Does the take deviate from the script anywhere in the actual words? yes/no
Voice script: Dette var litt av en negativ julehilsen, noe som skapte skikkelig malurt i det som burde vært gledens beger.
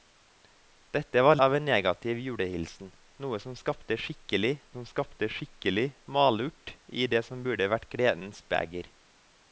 yes